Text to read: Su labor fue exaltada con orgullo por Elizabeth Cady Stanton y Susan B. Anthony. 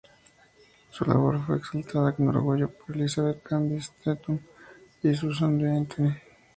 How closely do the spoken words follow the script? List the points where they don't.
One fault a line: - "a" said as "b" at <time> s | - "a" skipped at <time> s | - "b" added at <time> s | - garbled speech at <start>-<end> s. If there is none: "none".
none